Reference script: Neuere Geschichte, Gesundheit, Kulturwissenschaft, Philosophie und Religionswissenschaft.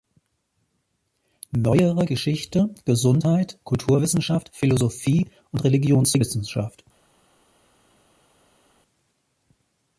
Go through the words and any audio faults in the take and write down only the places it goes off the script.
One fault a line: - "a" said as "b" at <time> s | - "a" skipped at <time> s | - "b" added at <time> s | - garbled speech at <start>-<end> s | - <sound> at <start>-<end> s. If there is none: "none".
none